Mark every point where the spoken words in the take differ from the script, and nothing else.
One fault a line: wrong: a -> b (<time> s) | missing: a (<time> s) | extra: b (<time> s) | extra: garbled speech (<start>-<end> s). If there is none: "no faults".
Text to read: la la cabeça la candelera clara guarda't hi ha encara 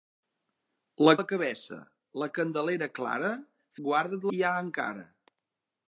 no faults